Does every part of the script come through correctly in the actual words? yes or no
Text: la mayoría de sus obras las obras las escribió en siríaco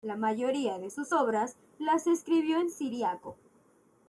no